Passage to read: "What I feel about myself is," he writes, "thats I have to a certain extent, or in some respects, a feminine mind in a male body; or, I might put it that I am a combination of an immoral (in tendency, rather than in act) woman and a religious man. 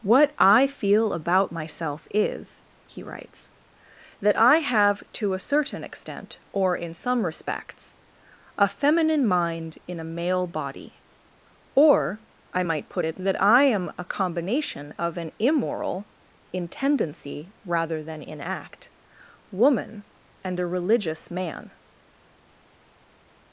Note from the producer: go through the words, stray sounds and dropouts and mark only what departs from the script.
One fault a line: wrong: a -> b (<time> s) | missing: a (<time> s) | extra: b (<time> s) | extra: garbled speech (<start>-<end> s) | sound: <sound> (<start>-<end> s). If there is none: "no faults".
wrong: thats -> that (4.2 s)